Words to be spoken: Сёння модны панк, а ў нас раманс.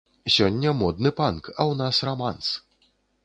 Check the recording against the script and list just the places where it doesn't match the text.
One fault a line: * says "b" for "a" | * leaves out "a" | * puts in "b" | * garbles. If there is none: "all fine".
all fine